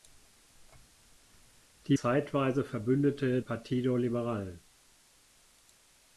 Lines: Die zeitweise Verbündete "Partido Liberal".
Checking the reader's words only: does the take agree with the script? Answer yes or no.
yes